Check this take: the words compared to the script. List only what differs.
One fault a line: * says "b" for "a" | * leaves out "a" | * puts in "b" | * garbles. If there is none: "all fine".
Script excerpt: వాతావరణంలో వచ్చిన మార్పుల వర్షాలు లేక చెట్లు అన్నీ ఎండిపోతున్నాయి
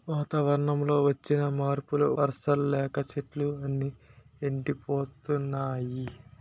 all fine